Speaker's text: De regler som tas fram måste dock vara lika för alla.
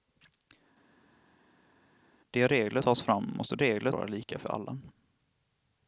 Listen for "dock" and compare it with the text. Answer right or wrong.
wrong